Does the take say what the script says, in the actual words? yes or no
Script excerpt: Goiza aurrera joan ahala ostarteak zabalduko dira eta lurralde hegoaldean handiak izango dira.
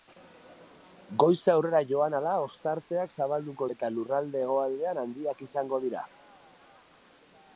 no